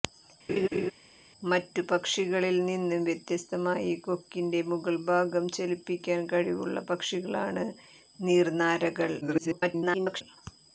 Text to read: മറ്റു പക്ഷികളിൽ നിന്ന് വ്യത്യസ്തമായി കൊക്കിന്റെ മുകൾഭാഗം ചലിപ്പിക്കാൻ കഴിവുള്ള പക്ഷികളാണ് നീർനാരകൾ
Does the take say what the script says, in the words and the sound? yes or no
no